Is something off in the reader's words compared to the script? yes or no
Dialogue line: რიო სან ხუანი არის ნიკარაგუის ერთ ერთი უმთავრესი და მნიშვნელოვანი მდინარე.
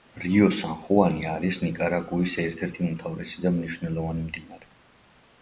no